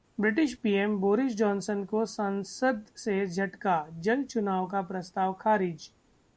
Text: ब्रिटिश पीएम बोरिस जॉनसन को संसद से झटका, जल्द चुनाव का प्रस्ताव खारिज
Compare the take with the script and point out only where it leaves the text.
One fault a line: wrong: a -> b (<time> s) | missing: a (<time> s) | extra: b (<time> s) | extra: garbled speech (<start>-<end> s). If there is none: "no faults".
no faults